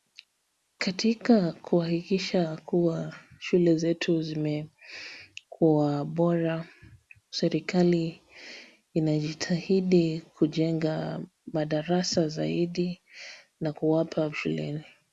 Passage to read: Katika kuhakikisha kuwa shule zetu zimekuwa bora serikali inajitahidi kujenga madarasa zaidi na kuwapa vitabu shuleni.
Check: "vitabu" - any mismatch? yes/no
yes